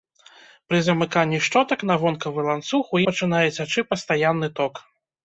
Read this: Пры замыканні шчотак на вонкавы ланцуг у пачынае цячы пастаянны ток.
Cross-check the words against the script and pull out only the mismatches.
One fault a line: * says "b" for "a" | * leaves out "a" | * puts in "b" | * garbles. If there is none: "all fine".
all fine